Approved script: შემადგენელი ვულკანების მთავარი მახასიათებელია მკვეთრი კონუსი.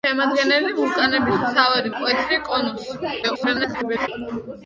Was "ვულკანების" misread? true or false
false